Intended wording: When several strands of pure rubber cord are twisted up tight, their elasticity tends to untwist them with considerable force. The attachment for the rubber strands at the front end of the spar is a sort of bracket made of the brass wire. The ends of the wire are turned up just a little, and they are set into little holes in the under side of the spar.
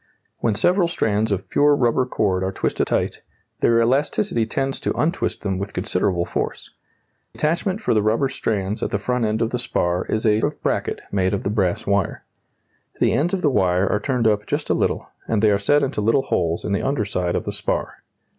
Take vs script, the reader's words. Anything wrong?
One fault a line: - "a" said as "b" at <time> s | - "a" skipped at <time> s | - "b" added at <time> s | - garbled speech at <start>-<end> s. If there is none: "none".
- "up" skipped at 2.9 s
- "The" skipped at 6.7 s
- "sort" skipped at 10.4 s